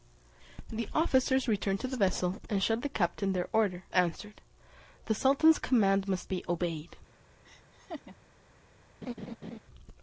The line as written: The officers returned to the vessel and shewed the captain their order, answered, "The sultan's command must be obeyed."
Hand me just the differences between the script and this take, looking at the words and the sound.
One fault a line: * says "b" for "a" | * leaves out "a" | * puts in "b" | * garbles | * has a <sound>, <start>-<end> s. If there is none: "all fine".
* has a laugh, 7.4-8.2 s
* has a laugh, 9.0-9.6 s